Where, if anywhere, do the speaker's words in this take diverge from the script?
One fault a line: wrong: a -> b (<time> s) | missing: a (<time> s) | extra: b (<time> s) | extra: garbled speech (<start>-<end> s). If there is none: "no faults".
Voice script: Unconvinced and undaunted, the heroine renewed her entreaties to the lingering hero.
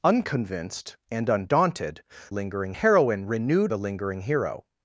wrong: the -> lingering (2.3 s)
missing: her entreaties to (3.7 s)